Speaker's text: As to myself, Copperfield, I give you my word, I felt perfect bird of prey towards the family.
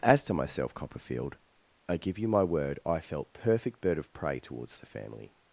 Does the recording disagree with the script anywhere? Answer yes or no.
no